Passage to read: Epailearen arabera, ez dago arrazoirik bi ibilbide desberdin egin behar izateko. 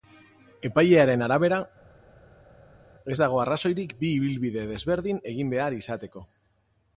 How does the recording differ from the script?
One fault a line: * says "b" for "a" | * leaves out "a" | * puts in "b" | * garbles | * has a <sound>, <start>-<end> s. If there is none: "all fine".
all fine